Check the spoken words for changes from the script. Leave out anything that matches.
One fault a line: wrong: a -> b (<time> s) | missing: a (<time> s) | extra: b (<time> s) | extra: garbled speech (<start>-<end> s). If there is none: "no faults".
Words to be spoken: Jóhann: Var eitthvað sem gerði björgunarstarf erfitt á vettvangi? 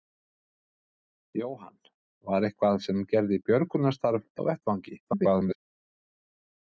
missing: erfitt (4.2 s)
extra: garbled speech (5.0-5.6 s)